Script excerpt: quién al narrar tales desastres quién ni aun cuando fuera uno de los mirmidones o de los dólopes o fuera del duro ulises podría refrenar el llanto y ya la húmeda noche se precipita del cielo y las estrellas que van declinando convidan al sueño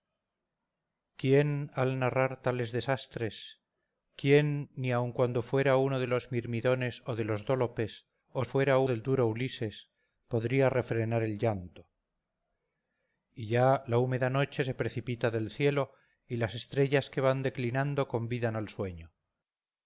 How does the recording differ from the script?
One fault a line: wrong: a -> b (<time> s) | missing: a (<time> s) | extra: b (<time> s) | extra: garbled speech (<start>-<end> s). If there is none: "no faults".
no faults